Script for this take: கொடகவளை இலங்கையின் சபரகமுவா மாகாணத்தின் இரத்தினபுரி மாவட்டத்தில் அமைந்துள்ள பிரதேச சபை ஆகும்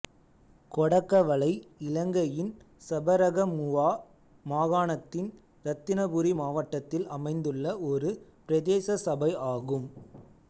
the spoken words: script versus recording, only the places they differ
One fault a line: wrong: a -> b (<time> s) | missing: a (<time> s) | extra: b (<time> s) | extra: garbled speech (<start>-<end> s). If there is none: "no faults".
extra: ஒரு (7.9 s)